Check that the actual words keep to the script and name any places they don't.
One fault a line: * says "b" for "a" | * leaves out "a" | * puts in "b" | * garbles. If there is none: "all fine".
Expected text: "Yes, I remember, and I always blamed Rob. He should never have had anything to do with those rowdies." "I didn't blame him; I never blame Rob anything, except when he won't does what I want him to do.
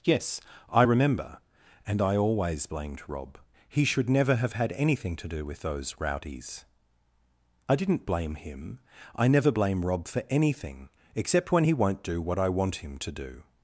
* puts in "for"
* says "do" for "does"